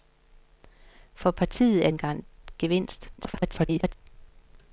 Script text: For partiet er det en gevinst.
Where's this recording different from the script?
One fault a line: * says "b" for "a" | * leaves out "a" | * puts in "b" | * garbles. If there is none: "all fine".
* leaves out "det"
* garbles